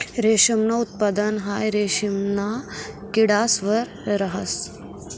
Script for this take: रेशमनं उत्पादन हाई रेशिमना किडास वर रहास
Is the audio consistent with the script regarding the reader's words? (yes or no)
yes